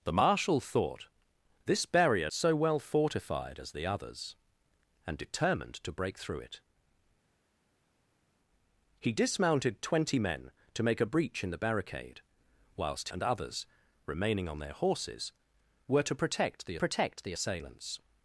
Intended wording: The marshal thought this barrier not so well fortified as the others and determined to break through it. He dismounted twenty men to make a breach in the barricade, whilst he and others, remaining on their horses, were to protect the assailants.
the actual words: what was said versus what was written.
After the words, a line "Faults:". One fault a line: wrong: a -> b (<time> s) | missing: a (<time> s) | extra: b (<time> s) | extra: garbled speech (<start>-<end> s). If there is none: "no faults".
The marshal thought this barrier so well fortified as the others and determined to break through it. He dismounted twenty men to make a breach in the barricade, whilst and others, remaining on their horses, were to protect the protect the assailants.
Faults:
missing: not (2.3 s)
missing: he (13.1 s)
extra: protect the (16.7 s)